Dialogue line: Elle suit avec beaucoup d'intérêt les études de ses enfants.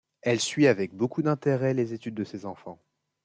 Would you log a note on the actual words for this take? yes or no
no